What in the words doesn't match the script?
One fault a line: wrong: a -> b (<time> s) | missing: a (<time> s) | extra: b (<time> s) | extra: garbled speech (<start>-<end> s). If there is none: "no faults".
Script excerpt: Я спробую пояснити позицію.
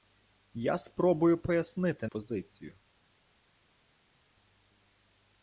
no faults